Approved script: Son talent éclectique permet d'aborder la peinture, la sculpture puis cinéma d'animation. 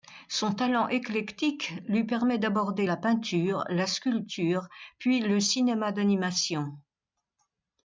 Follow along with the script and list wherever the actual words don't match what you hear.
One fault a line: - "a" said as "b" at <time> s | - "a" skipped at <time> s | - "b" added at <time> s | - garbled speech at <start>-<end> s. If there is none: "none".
- "lui" added at 1.9 s
- "le" added at 5.2 s